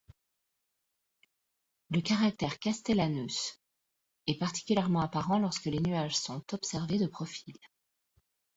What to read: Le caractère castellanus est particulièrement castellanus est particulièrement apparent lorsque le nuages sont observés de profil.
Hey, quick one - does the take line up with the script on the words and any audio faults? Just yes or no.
no